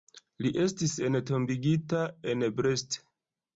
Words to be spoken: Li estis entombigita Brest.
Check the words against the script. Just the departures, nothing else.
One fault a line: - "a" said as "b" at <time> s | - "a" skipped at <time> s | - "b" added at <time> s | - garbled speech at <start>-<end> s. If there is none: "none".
- "en" added at 2.4 s